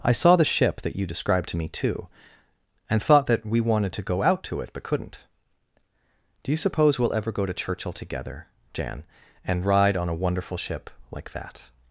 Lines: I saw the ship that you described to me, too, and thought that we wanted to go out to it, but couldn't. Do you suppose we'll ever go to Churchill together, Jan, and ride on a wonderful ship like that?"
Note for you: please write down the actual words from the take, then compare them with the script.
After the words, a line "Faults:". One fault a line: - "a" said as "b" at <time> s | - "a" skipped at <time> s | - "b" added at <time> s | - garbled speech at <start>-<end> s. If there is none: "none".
I saw the ship that you described to me, too, and thought that we wanted to go out to it, but couldn't. Do you suppose we'll ever go to Churchill together, Jan, and ride on a wonderful ship like that?"
Faults:
none